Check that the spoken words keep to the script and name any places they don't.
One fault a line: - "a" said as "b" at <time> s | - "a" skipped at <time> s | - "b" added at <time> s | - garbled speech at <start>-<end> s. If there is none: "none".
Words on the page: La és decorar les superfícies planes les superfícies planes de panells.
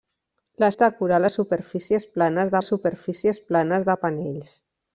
none